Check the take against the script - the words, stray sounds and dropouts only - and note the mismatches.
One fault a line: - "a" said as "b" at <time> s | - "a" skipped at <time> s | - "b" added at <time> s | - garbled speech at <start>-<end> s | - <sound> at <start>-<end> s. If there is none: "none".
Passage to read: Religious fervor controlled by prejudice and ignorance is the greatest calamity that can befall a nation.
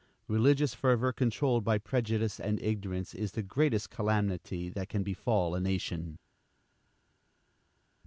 none